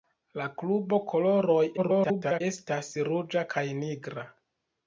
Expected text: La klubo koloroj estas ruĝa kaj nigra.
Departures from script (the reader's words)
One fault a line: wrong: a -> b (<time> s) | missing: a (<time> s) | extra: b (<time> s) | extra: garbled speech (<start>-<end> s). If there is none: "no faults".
extra: garbled speech (1.8-2.4 s)